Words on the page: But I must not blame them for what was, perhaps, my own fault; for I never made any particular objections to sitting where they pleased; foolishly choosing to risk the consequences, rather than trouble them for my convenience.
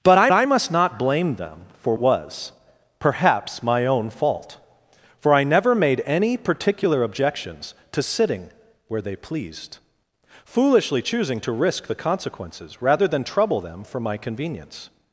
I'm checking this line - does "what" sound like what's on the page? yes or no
no